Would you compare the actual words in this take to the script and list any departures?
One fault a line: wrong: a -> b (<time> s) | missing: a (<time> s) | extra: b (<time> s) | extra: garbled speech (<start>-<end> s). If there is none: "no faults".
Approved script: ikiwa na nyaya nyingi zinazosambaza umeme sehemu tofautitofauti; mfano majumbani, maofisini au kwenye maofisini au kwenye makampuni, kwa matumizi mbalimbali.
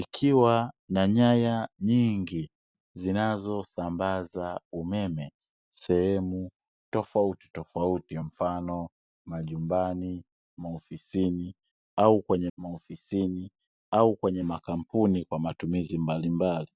no faults